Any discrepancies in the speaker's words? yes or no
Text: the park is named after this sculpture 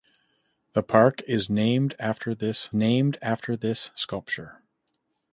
yes